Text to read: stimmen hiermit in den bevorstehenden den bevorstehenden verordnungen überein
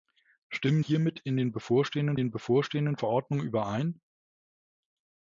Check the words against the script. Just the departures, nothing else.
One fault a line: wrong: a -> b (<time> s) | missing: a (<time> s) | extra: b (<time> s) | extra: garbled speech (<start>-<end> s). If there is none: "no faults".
no faults